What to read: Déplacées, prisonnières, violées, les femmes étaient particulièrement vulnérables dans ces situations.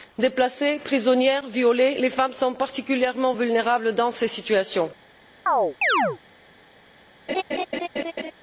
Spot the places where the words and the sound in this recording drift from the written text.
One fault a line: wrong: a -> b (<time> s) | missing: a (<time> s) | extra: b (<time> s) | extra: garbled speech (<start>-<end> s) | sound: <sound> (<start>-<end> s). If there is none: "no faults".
wrong: étaient -> sont (2.3 s)
sound: chirp (5.5-6.2 s)
sound: laugh (7.3-8.3 s)